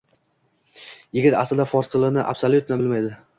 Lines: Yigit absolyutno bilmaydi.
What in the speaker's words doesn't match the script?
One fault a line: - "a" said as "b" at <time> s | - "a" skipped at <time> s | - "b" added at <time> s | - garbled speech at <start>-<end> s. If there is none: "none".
- "aslida fors tilini" added at 1.4 s